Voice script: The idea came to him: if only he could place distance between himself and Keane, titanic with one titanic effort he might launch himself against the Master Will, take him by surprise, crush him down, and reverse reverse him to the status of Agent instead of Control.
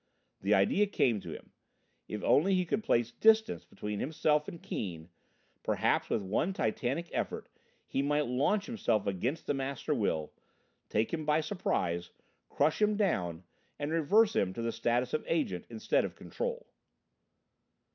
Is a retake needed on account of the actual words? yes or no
yes